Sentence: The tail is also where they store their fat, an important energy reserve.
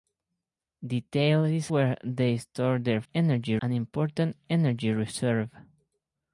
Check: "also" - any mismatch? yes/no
yes